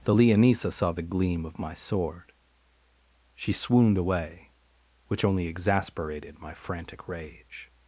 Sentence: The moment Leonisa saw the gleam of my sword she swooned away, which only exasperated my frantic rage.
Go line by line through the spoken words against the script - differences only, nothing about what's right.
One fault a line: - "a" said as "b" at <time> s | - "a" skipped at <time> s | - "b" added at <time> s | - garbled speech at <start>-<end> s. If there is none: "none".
- "moment" skipped at 0.1 s